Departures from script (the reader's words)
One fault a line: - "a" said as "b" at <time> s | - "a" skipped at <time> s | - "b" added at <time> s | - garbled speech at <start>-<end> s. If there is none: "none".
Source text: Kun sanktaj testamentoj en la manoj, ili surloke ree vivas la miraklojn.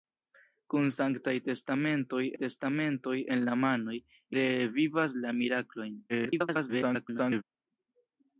- "testamentoj" added at 2.4 s
- "ili surloke" skipped at 4.0 s
- garbled speech at 6.1-7.4 s